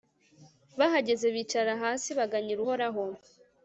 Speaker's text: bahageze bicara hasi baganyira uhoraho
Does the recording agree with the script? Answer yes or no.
yes